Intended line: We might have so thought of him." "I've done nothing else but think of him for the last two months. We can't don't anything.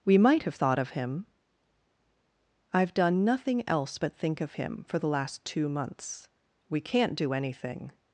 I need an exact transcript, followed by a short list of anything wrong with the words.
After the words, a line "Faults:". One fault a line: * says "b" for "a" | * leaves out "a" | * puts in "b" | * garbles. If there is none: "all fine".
We might have thought of him." "I've done nothing else but think of him for the last two months. We can't do anything.
Faults:
* leaves out "so"
* says "do" for "don't"